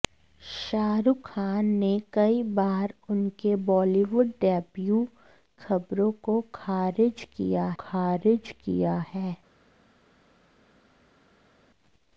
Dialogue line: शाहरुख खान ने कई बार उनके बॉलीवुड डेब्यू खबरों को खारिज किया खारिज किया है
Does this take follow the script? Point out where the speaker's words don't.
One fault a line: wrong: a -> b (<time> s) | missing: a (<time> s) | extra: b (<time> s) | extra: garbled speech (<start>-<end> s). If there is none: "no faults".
no faults